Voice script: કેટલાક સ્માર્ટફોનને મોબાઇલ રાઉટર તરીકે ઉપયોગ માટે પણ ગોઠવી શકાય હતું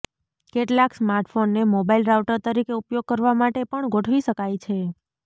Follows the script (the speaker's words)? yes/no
no